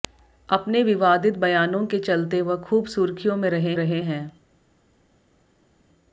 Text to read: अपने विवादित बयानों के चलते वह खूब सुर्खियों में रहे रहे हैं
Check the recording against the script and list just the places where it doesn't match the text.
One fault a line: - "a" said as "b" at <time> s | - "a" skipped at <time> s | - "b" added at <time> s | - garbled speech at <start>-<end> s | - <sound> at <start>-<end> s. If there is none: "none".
none